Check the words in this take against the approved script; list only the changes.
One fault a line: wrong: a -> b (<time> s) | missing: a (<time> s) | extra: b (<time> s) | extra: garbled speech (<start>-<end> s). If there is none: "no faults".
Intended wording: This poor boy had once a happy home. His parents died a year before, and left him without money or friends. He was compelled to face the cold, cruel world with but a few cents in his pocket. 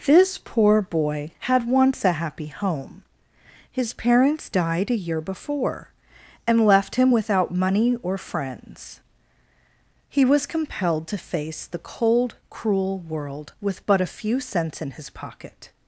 no faults